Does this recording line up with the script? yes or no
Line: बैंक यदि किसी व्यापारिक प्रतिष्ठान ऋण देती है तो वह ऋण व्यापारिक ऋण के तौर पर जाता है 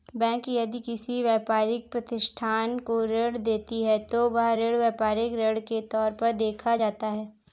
no